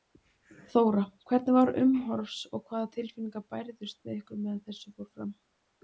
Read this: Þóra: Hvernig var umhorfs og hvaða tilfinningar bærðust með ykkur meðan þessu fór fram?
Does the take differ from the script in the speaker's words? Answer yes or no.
no